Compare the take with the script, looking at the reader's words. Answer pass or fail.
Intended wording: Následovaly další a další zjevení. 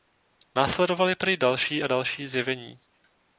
fail